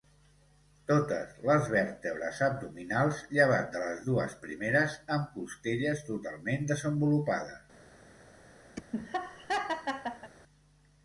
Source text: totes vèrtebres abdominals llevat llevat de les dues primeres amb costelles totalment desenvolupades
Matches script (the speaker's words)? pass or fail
fail